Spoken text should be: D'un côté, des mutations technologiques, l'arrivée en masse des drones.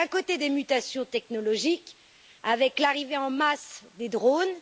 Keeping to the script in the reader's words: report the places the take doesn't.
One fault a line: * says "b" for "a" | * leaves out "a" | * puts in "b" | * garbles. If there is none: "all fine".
* puts in "avec"